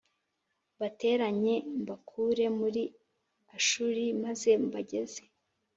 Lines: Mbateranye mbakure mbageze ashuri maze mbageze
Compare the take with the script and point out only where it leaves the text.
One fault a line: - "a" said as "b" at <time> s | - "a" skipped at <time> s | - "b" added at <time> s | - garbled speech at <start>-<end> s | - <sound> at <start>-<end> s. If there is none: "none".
- "mbageze" said as "muri" at 2.6 s